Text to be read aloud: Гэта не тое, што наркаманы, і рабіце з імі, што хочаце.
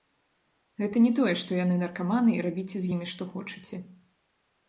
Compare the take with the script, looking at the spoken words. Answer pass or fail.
fail